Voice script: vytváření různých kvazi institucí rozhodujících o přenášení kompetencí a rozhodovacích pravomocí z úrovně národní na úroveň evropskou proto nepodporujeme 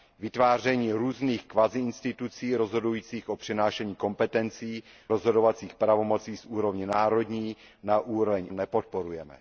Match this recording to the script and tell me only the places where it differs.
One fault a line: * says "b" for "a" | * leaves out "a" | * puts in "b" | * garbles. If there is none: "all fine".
* leaves out "a"
* leaves out "evropskou proto"